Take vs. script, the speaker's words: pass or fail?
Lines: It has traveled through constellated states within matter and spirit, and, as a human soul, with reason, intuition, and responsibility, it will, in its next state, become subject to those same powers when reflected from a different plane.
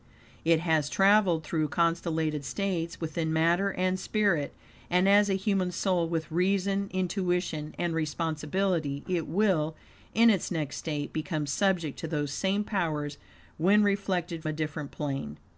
fail